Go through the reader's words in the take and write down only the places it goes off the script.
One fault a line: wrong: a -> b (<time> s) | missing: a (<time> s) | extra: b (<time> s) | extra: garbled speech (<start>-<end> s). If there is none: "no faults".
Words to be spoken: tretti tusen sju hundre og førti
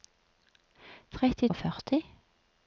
missing: tusen sju hundre (1.5 s)